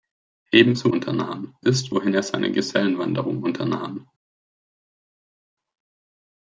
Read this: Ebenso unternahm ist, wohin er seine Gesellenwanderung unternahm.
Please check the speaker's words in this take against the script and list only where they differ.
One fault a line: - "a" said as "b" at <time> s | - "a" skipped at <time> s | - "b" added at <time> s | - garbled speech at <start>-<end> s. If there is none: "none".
none